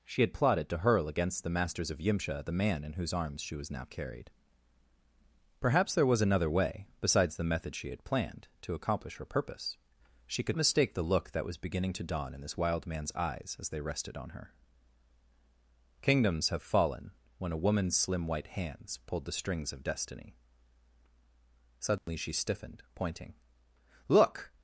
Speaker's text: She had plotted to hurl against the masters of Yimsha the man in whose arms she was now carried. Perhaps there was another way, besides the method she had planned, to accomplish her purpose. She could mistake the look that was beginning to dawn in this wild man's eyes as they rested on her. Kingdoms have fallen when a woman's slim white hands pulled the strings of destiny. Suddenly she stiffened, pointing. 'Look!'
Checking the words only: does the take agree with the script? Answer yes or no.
yes